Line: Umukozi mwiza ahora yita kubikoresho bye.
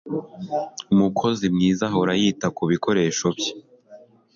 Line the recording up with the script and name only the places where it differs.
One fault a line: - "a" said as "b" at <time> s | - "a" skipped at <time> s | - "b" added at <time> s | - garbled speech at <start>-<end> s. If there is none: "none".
none